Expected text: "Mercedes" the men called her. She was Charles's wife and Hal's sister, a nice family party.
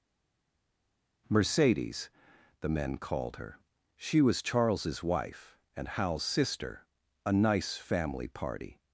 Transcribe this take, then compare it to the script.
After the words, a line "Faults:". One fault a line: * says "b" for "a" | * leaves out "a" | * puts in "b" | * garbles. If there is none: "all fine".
"Mercedes" the men called her. She was Charles's wife and Hal's sister, a nice family party.
Faults:
all fine